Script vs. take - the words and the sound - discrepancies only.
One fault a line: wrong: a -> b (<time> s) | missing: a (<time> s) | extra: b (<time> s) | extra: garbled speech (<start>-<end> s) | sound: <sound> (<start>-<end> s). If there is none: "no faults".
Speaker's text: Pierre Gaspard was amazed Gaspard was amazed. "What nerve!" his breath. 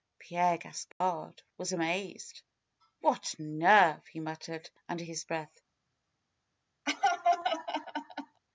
sound: dropout (0.9-1.0 s)
wrong: Gaspard was amazed What nerve -> What nerve he muttered under (3.0 s)
sound: laugh (6.9-8.4 s)